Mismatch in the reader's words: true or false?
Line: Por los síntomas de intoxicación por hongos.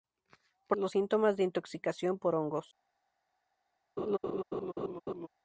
false